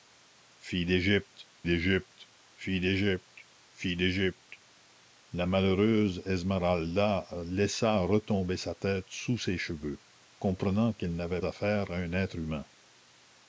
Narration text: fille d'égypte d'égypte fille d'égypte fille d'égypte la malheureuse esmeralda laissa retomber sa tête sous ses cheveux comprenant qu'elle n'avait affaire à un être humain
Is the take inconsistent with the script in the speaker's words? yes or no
no